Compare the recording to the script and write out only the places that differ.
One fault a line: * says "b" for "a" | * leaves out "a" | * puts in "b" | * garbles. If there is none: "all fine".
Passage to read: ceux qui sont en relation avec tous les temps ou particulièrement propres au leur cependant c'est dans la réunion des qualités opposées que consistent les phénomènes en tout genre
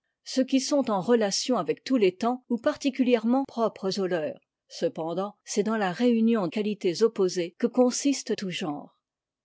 * leaves out "des"
* leaves out "les phénomènes en"